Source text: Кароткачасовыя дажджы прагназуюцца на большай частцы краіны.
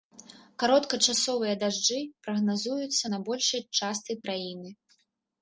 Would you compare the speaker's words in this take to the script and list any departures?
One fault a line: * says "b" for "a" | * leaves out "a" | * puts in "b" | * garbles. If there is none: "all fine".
all fine